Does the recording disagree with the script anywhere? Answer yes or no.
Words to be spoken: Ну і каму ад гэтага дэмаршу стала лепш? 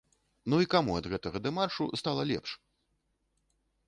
no